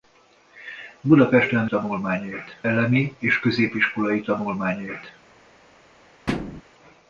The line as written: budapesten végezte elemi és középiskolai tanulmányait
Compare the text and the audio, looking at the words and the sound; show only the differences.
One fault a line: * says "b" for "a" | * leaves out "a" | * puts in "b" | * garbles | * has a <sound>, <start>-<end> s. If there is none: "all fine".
* says "tanulmányait" for "végezte"
* has a thud, 6.3-6.6 s